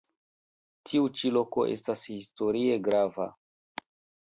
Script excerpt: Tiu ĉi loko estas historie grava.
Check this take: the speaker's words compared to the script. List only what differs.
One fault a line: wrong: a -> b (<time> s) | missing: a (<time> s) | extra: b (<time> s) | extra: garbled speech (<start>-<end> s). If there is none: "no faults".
no faults